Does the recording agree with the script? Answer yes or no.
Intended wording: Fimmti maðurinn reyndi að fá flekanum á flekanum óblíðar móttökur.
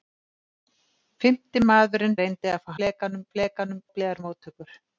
yes